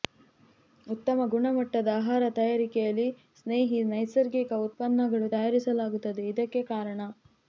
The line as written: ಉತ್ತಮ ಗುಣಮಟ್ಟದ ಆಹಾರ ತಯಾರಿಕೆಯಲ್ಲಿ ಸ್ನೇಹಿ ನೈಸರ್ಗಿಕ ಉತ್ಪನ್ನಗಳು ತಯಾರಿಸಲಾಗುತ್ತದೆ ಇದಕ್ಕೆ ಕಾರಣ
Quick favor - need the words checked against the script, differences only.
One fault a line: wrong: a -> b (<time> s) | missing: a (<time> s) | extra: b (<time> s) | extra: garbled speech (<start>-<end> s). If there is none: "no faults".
no faults